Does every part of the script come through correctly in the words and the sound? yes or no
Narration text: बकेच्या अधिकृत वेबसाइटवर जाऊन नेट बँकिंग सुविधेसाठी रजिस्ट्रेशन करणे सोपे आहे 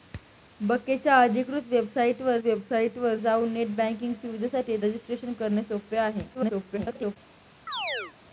no